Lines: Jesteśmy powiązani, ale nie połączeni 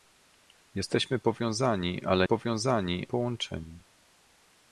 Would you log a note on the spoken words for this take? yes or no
yes